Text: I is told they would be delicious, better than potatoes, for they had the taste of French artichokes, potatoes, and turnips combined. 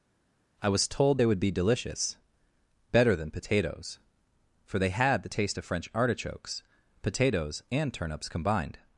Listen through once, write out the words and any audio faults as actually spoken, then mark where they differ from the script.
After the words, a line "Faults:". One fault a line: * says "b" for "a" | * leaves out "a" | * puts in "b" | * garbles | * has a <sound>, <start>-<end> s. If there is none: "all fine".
I was told they would be delicious, better than potatoes, for they had the taste of French artichokes, potatoes, and turnips combined.
Faults:
* says "was" for "is"